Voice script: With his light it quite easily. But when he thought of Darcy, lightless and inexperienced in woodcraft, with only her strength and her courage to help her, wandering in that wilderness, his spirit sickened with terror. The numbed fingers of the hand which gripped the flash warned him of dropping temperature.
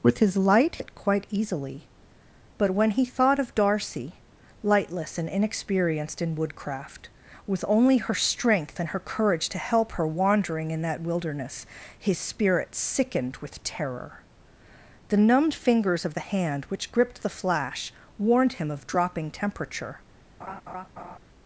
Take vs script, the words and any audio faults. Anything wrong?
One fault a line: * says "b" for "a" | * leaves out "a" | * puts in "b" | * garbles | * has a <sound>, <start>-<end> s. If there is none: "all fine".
* has a laugh, 20.4-21.2 s